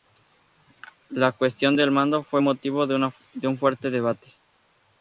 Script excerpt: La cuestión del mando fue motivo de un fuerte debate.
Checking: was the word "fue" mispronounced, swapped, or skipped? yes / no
no